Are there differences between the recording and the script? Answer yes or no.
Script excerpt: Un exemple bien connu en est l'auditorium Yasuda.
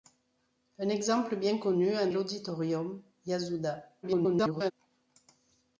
yes